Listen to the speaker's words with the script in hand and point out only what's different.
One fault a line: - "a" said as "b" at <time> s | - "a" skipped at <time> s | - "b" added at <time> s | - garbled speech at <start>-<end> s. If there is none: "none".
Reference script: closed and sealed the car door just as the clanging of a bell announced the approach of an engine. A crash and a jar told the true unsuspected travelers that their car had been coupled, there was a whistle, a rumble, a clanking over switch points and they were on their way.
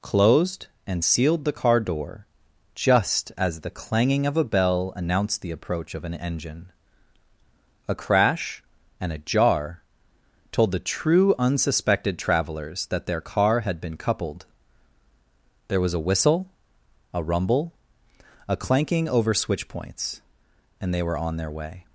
none